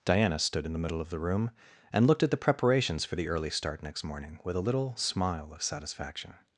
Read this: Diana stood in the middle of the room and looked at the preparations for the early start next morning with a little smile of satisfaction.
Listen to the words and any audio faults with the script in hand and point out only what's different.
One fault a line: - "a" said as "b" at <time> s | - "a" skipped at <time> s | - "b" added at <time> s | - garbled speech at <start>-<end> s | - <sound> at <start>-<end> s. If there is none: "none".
none